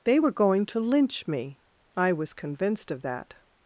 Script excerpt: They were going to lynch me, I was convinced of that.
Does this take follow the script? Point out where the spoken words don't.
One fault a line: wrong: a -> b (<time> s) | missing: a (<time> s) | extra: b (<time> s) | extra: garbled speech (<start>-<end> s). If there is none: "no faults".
no faults